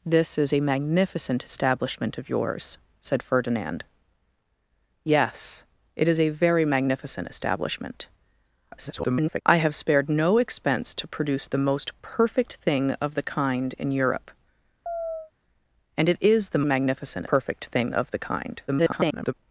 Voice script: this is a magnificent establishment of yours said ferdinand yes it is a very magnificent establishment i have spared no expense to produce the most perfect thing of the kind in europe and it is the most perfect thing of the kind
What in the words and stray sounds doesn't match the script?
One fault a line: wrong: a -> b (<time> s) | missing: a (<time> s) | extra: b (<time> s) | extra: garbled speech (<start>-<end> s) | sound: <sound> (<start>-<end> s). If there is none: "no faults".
extra: garbled speech (8.7-9.4 s)
sound: chirp (14.9-15.3 s)
wrong: most -> magnificent (16.6 s)
extra: garbled speech (18.7-19.3 s)